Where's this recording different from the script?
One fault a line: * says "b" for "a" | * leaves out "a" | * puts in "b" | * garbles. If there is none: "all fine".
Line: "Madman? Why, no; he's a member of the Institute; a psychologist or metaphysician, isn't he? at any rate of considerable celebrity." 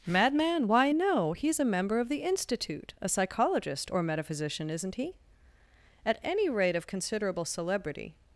all fine